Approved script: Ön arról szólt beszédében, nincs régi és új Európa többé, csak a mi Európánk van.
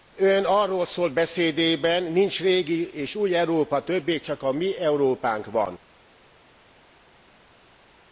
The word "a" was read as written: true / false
true